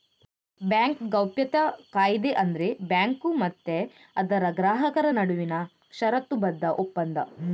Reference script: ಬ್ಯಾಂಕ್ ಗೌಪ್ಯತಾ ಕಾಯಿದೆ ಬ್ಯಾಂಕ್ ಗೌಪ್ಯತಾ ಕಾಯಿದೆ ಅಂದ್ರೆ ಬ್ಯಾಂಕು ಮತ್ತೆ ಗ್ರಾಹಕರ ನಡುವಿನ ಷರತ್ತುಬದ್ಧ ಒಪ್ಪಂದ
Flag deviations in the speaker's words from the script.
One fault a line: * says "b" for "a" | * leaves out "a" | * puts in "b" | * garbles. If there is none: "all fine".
* leaves out "ಬ್ಯಾಂಕ್ ಗೌಪ್ಯತಾ ಕಾಯಿದೆ"
* puts in "ಅದರ"